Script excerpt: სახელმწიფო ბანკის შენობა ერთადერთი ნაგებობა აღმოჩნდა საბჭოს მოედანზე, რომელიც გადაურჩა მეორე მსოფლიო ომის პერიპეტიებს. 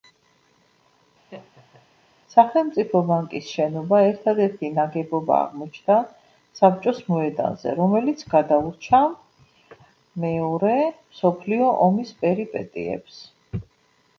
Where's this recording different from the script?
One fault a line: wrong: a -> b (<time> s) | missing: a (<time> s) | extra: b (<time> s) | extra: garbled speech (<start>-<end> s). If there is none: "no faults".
no faults